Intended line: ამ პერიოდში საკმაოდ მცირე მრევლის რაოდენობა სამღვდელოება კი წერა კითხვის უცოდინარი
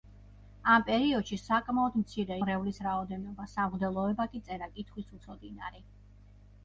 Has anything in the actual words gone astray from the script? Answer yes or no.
no